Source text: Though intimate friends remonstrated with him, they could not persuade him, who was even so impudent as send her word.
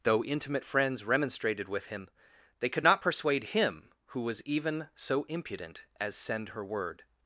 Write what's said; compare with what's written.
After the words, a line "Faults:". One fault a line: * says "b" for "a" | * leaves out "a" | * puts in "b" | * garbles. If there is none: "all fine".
Though intimate friends remonstrated with him, they could not persuade him, who was even so impudent as send her word.
Faults:
all fine